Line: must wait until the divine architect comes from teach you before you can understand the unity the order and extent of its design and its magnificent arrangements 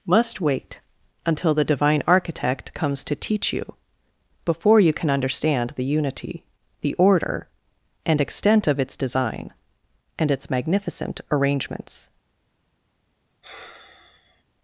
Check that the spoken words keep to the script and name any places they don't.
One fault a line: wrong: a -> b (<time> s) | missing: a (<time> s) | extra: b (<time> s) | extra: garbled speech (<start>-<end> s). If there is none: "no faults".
wrong: from -> to (3.0 s)